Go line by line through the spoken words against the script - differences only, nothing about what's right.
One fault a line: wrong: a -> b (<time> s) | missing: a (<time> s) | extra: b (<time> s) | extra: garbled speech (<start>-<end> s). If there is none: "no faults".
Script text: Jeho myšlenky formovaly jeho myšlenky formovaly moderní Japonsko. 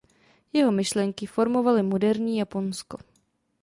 missing: jeho myšlenky formovaly (1.8 s)